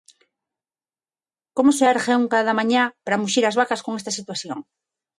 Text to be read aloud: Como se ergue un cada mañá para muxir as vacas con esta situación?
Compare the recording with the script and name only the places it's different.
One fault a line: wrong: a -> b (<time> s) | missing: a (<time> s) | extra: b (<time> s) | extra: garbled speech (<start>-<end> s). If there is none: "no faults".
no faults